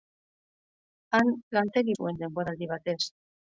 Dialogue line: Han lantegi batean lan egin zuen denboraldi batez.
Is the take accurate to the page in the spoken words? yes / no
no